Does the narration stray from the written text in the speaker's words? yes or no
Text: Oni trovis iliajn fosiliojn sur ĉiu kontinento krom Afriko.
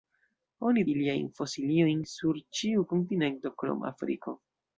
yes